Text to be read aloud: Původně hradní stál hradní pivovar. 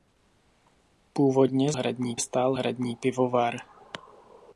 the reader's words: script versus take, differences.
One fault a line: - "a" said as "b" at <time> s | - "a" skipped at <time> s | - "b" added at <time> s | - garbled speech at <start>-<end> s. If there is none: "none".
none